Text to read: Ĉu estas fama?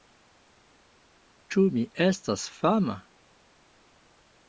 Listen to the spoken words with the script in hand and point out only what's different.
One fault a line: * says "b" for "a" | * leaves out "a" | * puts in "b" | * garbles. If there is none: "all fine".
* puts in "mi"